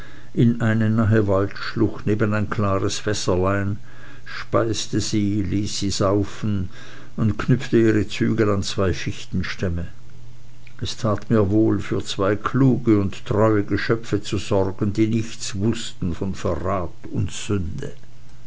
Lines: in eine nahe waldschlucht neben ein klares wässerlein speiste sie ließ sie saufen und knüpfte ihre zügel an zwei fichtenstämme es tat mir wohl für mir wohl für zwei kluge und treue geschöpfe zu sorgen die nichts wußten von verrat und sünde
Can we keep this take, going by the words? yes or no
no